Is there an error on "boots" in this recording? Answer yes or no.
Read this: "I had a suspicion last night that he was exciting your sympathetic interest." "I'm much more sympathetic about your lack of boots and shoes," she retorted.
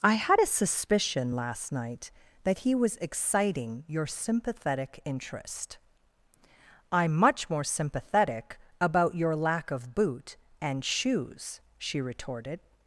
yes